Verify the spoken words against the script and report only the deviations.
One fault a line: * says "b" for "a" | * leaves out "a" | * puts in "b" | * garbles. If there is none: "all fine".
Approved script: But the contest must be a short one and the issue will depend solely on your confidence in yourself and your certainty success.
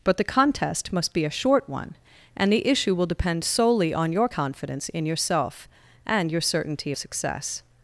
all fine